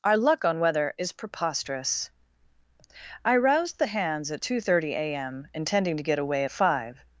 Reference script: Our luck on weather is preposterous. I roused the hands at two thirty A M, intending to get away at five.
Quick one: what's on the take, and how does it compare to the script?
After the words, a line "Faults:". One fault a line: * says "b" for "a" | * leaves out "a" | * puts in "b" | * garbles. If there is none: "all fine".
Our luck on weather is preposterous. I roused the hands at two thirty A M, intending to get away at five.
Faults:
all fine